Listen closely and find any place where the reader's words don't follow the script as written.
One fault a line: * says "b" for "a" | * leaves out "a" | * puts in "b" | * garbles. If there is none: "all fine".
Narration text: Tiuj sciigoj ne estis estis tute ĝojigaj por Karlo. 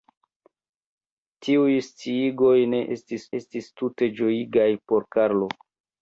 all fine